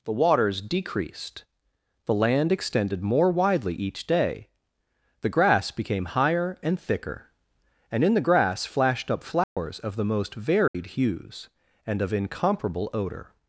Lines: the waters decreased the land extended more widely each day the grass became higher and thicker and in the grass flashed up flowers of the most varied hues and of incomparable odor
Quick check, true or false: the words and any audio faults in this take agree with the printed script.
false